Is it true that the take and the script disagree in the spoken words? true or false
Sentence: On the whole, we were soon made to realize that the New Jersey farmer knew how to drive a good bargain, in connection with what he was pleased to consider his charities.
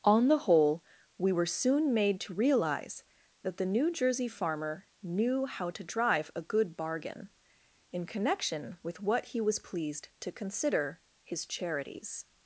false